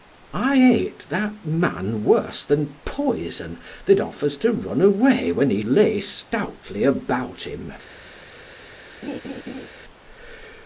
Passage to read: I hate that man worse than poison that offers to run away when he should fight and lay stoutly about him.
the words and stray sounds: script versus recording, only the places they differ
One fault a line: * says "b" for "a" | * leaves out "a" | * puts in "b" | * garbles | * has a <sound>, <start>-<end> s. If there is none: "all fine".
* leaves out "should fight and"
* has a laugh, 9.0-9.7 s